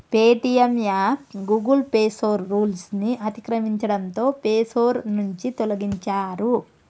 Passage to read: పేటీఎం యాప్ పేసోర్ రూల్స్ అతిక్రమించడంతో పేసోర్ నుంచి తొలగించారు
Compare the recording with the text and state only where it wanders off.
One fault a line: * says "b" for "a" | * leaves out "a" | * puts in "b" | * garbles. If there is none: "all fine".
* puts in "గూగుల్"
* puts in "ని"